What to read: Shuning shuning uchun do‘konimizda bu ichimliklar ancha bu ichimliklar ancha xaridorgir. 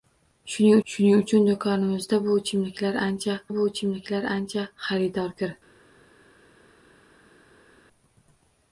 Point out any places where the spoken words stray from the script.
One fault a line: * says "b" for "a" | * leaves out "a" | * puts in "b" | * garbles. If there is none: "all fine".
all fine